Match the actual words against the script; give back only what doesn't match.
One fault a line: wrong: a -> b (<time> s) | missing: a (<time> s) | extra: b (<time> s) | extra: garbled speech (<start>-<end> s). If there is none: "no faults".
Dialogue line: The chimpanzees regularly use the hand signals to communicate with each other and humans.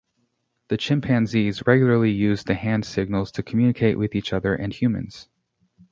no faults